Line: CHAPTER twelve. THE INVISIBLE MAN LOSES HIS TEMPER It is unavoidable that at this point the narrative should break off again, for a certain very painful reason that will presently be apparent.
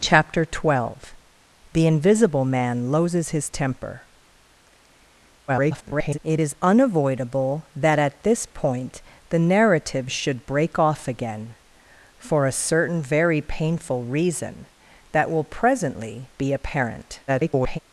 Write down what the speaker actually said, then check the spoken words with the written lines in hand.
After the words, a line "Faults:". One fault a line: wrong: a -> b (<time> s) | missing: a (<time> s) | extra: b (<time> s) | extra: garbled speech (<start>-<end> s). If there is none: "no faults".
CHAPTER twelve. THE INVISIBLE MAN LOSES HIS TEMPER [garbled] It is unavoidable that at this point the narrative should break off again, for a certain very painful reason that will presently be apparent. [garbled]
Faults:
extra: garbled speech (5.5-6.2 s)
extra: garbled speech (17.3-17.8 s)